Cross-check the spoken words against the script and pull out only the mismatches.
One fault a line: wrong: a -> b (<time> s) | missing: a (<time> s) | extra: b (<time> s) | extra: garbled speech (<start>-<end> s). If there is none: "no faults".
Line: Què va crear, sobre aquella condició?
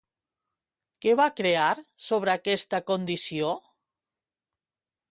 wrong: aquella -> aquesta (2.4 s)